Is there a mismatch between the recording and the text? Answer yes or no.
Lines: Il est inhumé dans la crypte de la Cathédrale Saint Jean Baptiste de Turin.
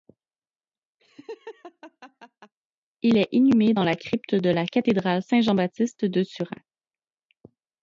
no